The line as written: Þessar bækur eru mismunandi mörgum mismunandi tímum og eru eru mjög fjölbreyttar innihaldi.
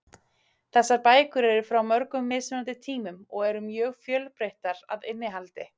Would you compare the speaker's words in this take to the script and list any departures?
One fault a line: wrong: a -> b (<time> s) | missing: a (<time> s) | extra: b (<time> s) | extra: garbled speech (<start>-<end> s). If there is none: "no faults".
wrong: mismunandi -> frá (1.7 s)
missing: eru (3.6 s)
extra: að (5.0 s)